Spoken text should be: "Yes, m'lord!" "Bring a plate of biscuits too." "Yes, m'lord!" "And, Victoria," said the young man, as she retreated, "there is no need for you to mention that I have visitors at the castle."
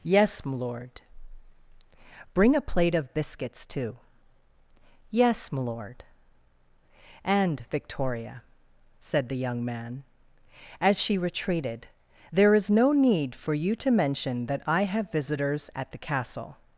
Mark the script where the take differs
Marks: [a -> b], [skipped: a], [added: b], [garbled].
"Yes, m'lord!" "Bring a plate of biscuits too." "Yes, m'lord!" "And, Victoria," said the young man, as she retreated, "there is no need for you to mention that I have visitors at the castle."